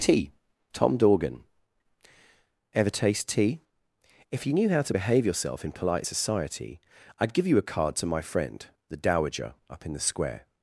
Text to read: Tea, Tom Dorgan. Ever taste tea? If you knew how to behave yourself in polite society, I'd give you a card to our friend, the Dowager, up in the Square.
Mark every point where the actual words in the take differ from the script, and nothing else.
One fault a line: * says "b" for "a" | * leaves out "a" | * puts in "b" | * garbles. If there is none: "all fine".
* says "my" for "our"